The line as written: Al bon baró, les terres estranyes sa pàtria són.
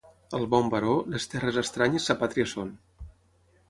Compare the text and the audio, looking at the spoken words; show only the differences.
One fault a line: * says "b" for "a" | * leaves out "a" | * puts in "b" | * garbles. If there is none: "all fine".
all fine